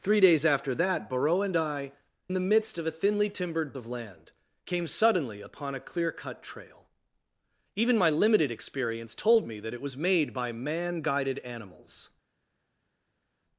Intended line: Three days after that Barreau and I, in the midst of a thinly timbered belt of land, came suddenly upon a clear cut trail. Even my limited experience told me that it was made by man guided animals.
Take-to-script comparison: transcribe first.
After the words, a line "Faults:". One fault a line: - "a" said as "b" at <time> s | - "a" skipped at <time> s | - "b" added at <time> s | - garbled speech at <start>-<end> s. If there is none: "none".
Three days after that Barreau and I, the midst of a thinly timbered of land, came suddenly upon a clear cut trail. Even my limited experience told me that it was made by man guided animals.
Faults:
- "in" skipped at 1.9 s
- "belt" skipped at 3.7 s